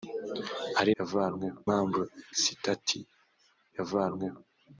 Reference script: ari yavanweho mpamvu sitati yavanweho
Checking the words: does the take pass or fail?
pass